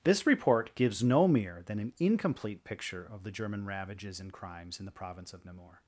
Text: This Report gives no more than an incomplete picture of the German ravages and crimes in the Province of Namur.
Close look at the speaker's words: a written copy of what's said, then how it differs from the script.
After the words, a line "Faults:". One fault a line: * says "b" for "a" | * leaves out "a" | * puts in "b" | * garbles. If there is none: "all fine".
This Report gives no mere than an incomplete picture of the German ravages and crimes in the Province of Namur.
Faults:
* says "mere" for "more"